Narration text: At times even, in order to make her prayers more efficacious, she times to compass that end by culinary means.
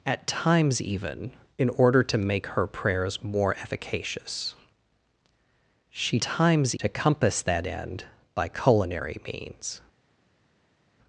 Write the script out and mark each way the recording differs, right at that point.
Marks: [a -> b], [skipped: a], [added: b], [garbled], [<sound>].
At times even, in order to make her prayers more efficacious, she times to compass that end by culinary means.